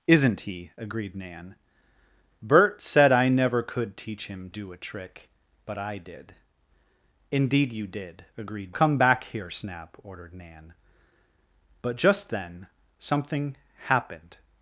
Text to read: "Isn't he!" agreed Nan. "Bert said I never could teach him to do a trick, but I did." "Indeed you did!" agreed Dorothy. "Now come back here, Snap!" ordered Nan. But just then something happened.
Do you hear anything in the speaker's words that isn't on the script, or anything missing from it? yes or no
yes